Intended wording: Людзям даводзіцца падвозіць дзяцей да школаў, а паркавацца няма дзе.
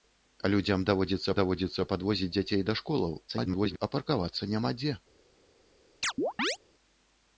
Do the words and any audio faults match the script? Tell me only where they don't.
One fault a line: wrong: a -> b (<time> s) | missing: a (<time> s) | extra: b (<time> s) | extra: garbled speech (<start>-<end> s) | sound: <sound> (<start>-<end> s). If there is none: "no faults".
extra: даводзіцца (1.4 s)
extra: garbled speech (3.3-3.8 s)
sound: chirp (6.0-6.6 s)